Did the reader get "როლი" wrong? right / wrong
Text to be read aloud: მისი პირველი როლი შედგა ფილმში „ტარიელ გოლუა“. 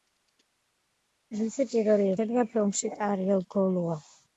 wrong